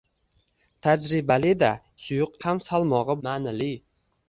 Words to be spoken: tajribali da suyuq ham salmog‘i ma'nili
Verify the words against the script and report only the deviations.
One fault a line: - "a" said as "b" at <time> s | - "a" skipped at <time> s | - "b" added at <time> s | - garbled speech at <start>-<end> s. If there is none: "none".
none